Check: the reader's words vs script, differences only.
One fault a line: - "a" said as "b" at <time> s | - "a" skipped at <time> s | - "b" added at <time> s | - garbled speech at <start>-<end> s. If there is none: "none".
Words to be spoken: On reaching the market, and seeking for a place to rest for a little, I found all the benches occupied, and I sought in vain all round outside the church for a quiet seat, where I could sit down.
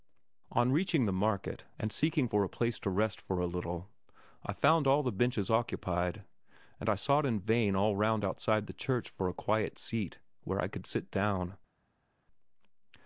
none